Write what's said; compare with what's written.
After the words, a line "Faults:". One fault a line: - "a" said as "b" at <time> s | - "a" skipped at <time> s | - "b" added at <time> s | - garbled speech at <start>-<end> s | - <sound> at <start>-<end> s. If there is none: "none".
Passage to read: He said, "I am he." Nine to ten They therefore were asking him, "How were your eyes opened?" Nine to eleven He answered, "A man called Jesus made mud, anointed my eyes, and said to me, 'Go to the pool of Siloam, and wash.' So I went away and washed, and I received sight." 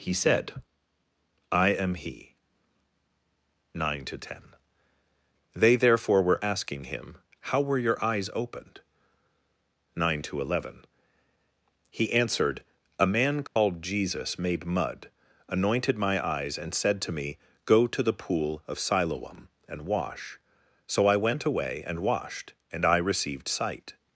He said, "I am he." Nine to ten They therefore were asking him, "How were your eyes opened?" Nine to eleven He answered, "A man called Jesus made mud, anointed my eyes, and said to me, 'Go to the pool of Siloam, and wash.' So I went away and washed, and I received sight."
Faults:
- dropout at 13.5-13.6 s